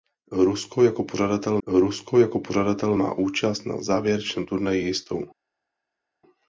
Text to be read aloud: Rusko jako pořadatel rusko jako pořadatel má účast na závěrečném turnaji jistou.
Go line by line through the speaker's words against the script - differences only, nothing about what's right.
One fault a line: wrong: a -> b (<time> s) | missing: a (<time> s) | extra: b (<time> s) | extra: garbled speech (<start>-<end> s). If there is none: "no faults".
no faults